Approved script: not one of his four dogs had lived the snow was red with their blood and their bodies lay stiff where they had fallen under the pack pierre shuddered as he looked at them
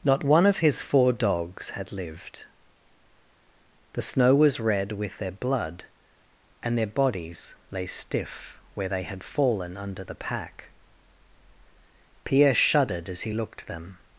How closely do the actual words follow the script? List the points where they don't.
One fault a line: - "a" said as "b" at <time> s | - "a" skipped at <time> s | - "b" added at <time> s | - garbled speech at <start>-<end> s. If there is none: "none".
- "at" skipped at 13.7 s